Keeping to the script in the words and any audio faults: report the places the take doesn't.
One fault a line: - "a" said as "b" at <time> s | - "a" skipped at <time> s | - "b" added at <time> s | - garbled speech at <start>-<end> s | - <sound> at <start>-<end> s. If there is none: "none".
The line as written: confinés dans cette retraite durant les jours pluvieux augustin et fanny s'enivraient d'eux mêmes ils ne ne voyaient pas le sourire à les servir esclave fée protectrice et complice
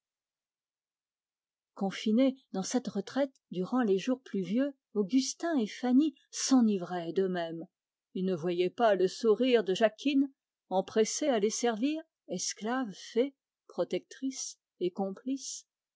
- "ne" skipped at 8.3 s
- "de jacquine empressée" added at 9.6 s